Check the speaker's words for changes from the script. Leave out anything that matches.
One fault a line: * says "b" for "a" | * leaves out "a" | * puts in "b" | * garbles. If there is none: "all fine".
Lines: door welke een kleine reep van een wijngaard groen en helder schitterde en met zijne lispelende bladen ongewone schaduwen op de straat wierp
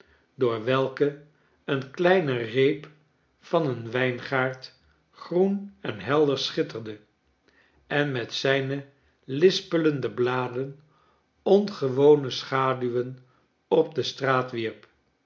all fine